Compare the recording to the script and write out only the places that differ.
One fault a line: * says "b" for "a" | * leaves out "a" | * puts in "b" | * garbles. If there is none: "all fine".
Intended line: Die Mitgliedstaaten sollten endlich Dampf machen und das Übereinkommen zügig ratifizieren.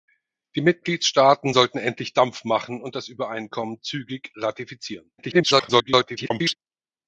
* garbles